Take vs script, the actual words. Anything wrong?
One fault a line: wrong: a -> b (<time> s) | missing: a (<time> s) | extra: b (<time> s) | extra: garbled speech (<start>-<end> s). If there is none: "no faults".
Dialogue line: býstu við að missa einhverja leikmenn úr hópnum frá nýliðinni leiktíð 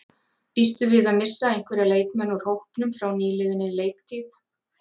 no faults